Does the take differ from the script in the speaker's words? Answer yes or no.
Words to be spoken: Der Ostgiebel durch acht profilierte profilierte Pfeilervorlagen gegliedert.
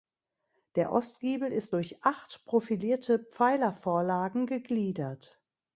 yes